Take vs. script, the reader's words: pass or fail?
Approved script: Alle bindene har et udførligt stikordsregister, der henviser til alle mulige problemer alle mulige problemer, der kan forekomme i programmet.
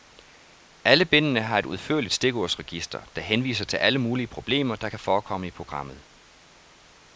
fail